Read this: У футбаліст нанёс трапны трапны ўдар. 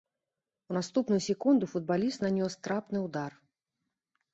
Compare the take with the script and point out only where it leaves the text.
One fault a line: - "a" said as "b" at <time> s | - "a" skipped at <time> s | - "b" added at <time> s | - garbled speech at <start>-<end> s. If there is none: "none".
- "наступную секунду" added at 0.8 s
- "трапны" skipped at 3.1 s